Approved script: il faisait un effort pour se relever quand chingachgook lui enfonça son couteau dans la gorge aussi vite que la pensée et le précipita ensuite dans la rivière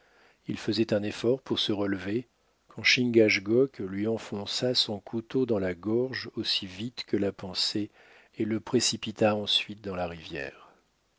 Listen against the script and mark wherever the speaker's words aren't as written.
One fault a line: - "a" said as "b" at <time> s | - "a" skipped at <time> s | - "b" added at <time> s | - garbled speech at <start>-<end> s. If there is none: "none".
none